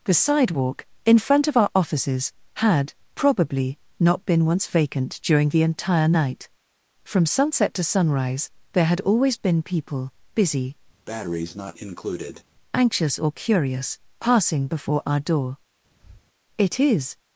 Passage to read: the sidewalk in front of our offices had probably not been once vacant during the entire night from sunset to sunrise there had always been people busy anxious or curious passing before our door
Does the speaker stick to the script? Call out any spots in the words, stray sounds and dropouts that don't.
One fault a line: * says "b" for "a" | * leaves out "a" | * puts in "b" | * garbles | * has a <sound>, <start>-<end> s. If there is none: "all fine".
* has a breath, 11.1-12.4 s
* has a breath, 16.0-16.2 s
* puts in "it is"